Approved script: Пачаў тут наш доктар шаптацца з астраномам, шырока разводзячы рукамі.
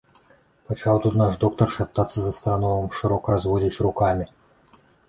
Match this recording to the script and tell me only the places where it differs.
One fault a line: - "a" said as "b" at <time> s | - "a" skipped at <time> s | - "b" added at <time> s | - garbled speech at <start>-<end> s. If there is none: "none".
none